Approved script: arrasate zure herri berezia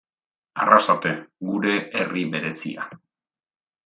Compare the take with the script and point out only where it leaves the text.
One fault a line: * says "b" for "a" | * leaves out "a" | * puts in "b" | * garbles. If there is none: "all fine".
* says "gure" for "zure"